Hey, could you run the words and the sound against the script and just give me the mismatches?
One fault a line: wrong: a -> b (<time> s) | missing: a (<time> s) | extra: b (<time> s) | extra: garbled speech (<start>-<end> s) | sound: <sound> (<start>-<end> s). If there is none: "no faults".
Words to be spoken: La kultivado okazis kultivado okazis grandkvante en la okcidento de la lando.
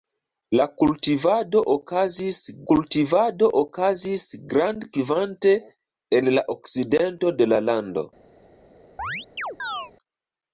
sound: chirp (9.0-9.9 s)